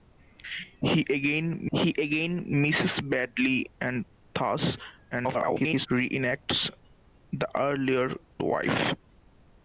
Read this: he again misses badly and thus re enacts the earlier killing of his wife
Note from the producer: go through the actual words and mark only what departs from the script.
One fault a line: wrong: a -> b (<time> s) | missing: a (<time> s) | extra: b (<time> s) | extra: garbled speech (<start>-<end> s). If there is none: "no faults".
extra: he again (1.7 s)
extra: garbled speech (5.1-5.9 s)
missing: killing of his (8.2 s)